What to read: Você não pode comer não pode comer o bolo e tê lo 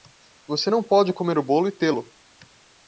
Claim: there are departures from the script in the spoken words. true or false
true